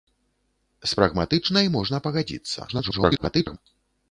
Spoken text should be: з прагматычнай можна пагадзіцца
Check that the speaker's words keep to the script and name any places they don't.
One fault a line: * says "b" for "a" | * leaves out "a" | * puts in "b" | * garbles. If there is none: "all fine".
* garbles